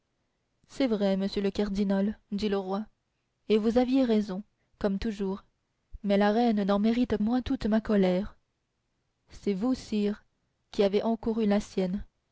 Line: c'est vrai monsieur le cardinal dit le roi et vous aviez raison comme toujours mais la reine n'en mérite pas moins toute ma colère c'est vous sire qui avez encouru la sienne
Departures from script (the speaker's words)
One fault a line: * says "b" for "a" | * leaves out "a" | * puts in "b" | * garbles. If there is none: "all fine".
* leaves out "pas"